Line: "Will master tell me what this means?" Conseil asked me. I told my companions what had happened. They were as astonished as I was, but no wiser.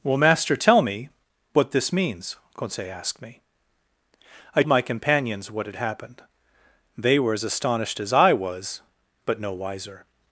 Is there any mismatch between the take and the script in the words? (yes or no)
yes